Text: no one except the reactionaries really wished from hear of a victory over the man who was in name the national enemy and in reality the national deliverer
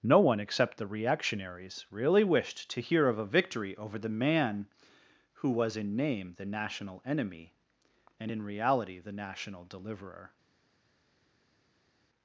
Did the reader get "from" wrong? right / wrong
wrong